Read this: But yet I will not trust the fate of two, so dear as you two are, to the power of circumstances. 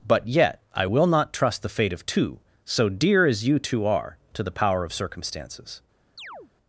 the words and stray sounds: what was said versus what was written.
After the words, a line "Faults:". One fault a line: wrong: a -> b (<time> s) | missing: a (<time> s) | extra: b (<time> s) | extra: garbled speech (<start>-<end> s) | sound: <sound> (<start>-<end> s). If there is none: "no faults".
But yet I will not trust the fate of two, so dear as you two are, to the power of circumstances.
Faults:
sound: chirp (6.2-6.5 s)